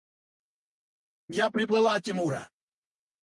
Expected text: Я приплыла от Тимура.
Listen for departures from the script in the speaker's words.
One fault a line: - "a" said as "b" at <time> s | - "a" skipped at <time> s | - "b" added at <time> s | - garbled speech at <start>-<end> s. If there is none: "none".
none